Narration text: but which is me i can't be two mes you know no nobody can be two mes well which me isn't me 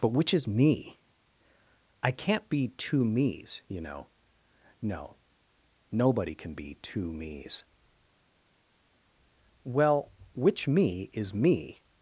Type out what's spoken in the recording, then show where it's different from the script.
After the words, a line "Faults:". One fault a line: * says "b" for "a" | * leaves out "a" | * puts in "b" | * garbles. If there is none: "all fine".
but which is me i can't be two mes you know no nobody can be two mes well which me is me
Faults:
* says "is" for "isn't"